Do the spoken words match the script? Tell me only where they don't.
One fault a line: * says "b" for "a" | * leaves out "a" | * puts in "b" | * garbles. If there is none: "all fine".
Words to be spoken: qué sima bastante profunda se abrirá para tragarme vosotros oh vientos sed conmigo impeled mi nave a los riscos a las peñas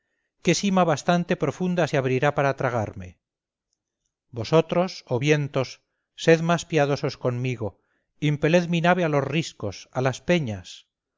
* puts in "más piadosos"